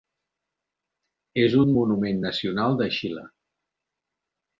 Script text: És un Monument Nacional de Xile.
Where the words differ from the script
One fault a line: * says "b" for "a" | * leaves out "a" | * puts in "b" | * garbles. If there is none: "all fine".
all fine